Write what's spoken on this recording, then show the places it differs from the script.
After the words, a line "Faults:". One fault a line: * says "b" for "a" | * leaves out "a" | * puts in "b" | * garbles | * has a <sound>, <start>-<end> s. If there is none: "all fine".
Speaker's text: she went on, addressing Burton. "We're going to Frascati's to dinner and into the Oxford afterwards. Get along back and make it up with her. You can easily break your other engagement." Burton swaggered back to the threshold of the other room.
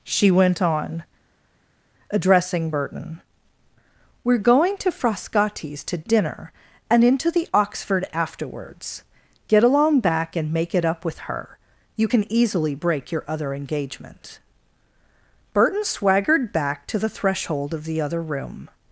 she went on, addressing Burton. "We're going to Frascati's to dinner and into the Oxford afterwards. Get along back and make it up with her. You can easily break your other engagement." Burton swaggered back to the threshold of the other room.
Faults:
all fine